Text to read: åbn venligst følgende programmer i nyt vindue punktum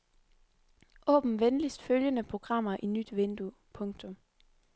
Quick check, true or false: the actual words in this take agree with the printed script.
true